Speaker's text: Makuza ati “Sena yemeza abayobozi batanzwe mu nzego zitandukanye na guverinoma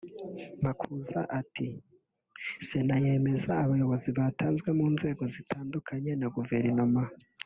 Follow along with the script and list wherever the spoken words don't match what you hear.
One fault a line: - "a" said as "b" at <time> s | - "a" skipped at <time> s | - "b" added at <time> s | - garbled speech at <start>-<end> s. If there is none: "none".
none